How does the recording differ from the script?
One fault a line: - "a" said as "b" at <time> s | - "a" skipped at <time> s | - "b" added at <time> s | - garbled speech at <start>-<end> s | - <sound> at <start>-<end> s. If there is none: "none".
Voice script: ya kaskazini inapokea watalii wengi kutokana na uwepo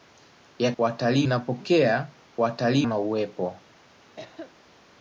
- "kaskazini" said as "watalii" at 0.8 s
- "wengi kutokana" skipped at 2.9 s
- cough at 4.2-4.6 s